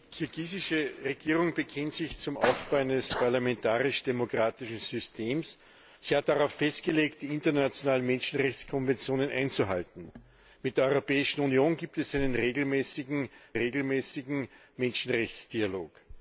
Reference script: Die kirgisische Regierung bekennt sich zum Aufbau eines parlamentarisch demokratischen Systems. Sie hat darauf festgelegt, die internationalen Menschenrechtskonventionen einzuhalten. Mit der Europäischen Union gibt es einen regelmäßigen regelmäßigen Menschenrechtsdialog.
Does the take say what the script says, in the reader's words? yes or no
yes